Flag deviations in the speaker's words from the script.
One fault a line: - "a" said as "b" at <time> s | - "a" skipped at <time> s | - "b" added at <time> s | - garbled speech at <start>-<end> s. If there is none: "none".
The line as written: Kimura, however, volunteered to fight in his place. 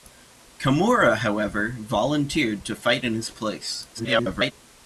- garbled speech at 3.9-4.5 s